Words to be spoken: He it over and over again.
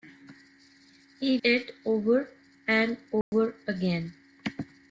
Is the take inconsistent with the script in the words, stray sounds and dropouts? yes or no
yes